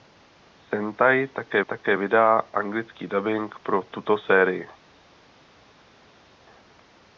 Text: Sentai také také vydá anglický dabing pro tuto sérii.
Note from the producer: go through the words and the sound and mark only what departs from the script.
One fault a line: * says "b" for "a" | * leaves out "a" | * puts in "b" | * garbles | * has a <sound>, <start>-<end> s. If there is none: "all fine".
all fine